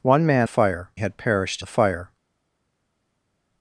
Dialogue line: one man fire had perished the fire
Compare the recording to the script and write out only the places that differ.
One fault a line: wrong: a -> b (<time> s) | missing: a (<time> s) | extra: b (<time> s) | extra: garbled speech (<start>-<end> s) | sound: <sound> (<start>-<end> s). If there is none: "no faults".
no faults